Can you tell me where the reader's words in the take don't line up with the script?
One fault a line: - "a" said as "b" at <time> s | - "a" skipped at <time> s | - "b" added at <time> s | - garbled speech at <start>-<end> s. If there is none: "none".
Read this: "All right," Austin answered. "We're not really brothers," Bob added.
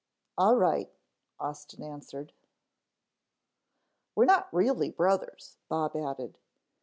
none